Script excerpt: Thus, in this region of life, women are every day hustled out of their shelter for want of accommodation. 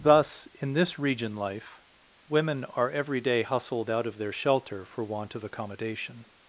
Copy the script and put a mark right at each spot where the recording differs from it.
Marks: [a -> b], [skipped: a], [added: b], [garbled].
Thus, in this region [skipped: of] life, women are every day hustled out of their shelter for want of accommodation.